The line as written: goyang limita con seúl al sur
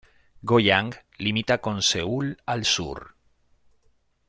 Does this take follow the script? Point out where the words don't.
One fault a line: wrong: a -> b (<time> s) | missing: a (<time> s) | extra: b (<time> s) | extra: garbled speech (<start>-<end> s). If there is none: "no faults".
no faults